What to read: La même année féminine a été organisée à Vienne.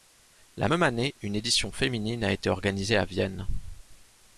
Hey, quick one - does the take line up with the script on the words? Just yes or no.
no